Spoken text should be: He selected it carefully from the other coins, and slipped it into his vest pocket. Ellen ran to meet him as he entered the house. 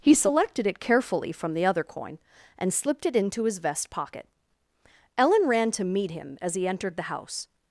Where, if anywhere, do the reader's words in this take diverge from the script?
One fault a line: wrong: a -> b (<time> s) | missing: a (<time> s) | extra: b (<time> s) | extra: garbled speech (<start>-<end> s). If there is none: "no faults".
wrong: coins -> coin (1.8 s)